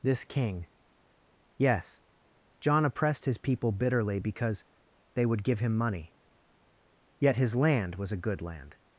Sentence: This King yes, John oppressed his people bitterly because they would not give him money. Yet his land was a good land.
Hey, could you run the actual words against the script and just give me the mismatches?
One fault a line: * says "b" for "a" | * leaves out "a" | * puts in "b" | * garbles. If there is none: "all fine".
* leaves out "not"